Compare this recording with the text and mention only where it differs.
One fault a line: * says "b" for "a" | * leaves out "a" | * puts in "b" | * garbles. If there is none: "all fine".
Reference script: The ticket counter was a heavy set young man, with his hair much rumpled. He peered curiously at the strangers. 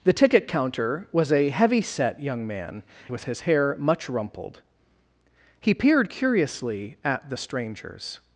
all fine